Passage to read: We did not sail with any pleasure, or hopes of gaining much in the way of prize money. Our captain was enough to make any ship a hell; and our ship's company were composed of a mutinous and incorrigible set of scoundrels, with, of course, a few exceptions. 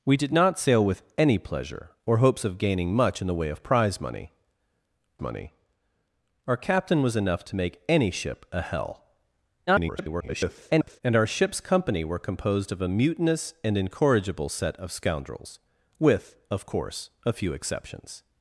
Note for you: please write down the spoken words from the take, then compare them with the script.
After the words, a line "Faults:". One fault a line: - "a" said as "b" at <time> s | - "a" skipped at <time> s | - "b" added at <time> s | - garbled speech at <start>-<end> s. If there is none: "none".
We did not sail with any pleasure, or hopes of gaining much in the way of prize money money. Our captain was enough to make any ship a hell; [garbled] and our ship's company were composed of a mutinous and incorrigible set of scoundrels, with, of course, a few exceptions.
Faults:
- "money" added at 5.2 s
- garbled speech at 9.7-11.0 s